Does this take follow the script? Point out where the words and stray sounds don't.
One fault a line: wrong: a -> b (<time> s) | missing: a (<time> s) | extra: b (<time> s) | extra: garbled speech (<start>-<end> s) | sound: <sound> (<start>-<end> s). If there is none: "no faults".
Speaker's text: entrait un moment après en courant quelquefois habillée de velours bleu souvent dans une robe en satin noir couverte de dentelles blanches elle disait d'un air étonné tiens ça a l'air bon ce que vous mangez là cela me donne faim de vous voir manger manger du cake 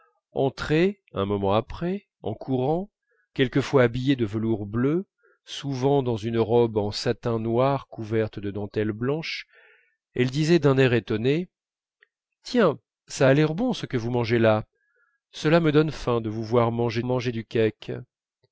no faults